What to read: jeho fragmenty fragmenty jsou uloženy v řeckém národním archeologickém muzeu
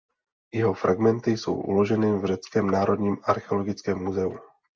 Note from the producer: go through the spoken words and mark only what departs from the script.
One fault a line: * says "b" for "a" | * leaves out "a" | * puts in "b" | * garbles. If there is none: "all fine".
* leaves out "fragmenty"